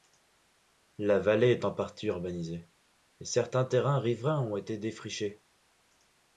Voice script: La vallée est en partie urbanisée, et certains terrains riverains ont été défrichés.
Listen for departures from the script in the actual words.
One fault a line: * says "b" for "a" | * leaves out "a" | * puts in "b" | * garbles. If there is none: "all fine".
all fine